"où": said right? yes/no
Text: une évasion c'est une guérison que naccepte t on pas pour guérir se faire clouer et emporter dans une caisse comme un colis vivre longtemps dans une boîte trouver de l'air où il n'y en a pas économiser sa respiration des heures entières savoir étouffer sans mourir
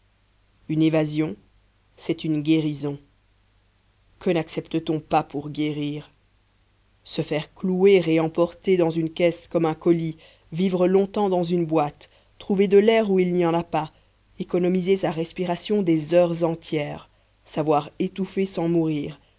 yes